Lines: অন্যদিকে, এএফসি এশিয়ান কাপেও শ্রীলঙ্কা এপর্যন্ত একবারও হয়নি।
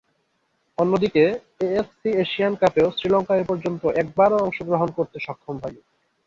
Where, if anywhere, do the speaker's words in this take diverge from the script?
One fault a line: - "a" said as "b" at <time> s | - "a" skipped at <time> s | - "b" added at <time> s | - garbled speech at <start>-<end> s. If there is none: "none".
- "অংশগ্রহণ করতে সক্ষম" added at 4.4 s